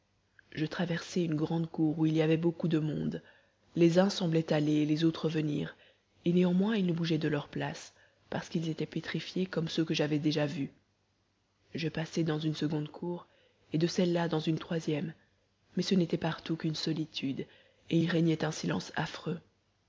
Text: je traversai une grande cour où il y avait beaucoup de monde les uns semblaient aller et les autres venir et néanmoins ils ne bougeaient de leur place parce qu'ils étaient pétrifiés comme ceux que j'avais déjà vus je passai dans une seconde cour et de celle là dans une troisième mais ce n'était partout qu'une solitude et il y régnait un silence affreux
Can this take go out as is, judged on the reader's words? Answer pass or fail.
fail